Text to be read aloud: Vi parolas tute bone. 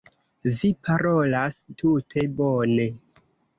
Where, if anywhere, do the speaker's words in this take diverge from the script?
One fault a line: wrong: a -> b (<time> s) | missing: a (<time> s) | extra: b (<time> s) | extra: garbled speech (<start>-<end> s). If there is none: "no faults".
no faults